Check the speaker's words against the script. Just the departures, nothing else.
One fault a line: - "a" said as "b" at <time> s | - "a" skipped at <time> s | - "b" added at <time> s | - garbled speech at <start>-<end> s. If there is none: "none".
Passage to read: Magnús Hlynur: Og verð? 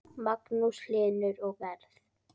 none